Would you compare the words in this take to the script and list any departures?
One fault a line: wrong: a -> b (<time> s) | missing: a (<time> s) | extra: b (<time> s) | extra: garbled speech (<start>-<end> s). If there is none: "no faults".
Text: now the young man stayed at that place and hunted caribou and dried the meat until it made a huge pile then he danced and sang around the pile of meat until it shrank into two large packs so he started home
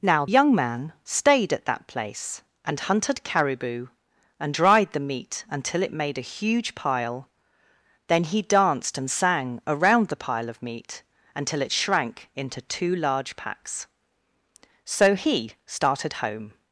missing: the (0.2 s)